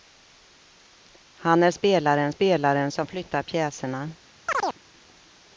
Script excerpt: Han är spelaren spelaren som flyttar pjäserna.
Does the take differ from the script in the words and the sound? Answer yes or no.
yes